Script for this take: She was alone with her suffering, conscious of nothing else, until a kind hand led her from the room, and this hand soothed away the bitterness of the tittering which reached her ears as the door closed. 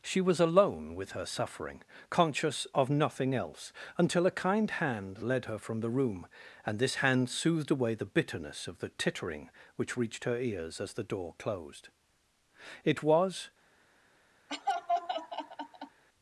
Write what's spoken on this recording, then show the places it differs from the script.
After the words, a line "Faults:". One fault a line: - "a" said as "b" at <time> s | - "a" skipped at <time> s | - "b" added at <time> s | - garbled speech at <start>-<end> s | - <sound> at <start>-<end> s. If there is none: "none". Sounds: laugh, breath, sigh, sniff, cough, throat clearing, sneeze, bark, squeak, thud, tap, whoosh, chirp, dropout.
She was alone with her suffering, conscious of nothing else, until a kind hand led her from the room, and this hand soothed away the bitterness of the tittering which reached her ears as the door closed. It was
Faults:
- "It was" added at 12.8 s
- laugh at 14.5-16.0 s